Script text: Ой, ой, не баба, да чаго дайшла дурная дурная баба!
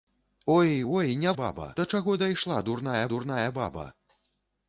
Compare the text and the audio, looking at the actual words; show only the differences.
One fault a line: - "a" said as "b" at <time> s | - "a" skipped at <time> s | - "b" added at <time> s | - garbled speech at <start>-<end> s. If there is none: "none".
none